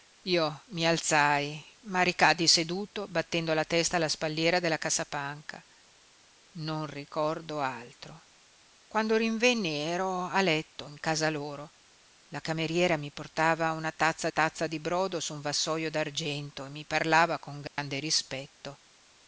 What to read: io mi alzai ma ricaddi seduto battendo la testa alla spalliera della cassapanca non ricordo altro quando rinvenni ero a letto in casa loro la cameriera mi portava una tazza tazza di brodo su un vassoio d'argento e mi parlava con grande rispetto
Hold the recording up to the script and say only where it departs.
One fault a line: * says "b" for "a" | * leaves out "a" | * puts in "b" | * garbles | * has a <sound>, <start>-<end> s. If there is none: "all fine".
* has a dropout, 17.7-17.8 s